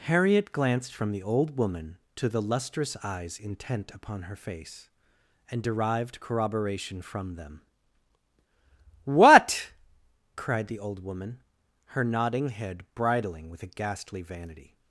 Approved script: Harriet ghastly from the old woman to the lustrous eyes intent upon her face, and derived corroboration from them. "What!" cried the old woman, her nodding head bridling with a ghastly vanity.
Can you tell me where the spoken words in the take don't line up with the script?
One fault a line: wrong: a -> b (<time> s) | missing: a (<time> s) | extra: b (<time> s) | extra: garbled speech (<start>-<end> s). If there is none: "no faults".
wrong: ghastly -> glanced (0.5 s)